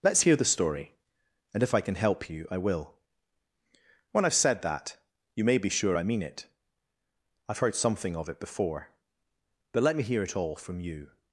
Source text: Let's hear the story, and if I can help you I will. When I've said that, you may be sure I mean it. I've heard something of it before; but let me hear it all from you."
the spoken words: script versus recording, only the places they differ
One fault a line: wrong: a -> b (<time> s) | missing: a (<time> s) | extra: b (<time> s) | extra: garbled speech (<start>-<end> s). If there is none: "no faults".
no faults